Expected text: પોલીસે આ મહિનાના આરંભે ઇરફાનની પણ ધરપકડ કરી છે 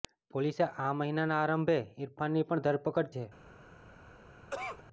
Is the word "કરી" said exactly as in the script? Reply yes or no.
no